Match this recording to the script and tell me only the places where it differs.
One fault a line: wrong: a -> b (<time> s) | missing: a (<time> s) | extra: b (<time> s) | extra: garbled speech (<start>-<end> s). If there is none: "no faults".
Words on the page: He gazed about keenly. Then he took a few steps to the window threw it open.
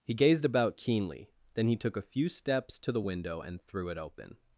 extra: and (3.4 s)